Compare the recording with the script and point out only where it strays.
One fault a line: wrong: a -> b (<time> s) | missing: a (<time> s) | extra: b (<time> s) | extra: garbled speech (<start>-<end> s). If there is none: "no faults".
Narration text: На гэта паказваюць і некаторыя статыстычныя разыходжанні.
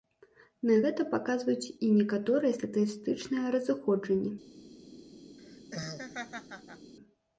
no faults